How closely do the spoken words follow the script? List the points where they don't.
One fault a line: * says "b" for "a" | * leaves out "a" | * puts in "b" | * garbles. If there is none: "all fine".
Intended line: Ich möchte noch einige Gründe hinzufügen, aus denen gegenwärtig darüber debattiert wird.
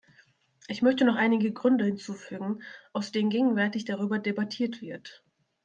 all fine